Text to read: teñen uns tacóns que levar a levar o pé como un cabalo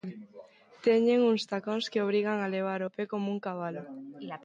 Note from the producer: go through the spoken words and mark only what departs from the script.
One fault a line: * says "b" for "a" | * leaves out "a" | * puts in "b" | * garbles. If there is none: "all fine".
* says "obrigan" for "levar"